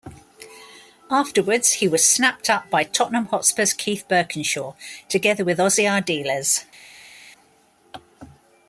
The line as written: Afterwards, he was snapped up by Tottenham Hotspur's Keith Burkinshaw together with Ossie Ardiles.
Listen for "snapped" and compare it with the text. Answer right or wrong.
right